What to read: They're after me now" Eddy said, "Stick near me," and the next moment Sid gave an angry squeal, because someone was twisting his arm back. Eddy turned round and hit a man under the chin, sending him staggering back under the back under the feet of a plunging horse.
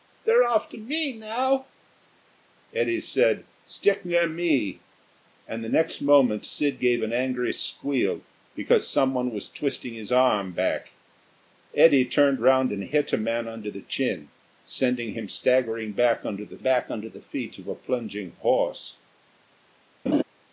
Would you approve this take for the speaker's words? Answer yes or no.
yes